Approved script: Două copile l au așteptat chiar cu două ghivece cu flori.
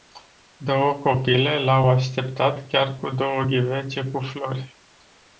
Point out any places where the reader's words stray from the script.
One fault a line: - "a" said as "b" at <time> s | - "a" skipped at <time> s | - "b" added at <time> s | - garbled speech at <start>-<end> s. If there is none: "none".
none